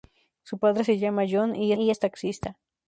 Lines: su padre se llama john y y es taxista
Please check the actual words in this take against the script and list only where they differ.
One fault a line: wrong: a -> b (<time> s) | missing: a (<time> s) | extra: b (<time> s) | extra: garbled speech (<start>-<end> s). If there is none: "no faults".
no faults